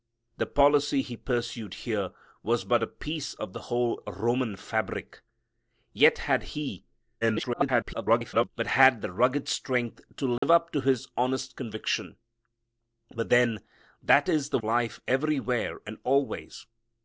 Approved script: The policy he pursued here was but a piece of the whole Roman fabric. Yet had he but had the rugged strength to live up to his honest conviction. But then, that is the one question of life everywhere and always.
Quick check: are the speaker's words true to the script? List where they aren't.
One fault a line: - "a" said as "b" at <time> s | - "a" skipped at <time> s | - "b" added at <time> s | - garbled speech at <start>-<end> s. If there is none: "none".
- garbled speech at 7.2-8.5 s
- "one question of" skipped at 14.6 s